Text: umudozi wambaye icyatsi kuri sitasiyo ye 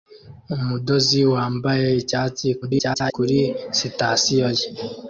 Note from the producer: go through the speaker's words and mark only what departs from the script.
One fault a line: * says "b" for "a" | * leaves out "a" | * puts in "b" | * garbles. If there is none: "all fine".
* garbles